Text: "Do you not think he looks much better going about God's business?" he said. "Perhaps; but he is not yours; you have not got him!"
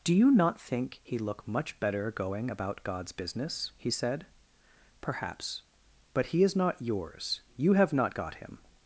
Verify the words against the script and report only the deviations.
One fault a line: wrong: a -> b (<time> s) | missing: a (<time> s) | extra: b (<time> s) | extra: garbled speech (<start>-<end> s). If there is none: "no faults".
wrong: looks -> look (1.2 s)